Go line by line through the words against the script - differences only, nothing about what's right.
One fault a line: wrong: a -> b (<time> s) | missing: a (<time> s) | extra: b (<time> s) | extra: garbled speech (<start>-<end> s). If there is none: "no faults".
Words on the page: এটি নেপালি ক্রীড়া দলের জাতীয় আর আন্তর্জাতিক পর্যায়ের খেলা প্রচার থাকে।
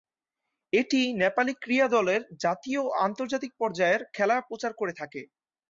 wrong: আর -> ও (2.8 s)
extra: করে (4.8 s)